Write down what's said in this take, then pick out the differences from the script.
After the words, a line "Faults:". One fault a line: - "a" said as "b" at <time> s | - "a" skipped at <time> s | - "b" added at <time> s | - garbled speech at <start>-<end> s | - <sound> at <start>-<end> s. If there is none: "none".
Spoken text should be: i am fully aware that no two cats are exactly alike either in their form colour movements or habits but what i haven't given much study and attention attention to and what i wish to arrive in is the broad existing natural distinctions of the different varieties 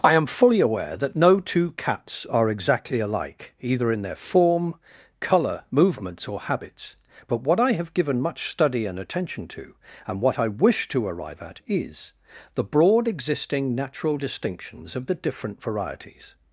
i am fully aware that no two cats are exactly alike either in their form colour movements or habits but what i have given much study and attention to and what i wish to arrive at is the broad existing natural distinctions of the different varieties
Faults:
- "haven't" said as "have" at 7.7 s
- "attention" skipped at 9.5 s
- "in" said as "at" at 11.4 s